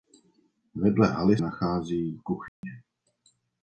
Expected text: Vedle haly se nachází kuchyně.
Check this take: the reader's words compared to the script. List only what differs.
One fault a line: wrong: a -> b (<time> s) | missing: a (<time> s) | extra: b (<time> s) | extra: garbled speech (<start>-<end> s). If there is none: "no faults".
missing: se (1.4 s)